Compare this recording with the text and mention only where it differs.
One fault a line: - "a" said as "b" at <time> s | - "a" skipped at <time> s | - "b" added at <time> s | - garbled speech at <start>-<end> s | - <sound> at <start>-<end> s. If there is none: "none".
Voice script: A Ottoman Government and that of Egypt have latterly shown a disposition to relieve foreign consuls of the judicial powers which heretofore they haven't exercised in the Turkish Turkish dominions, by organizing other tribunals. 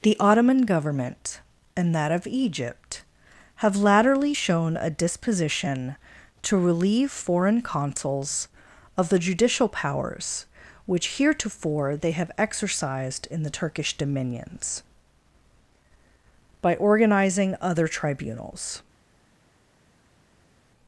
- "A" said as "The" at 0.0 s
- "haven't" said as "have" at 12.1 s
- "Turkish" skipped at 14.0 s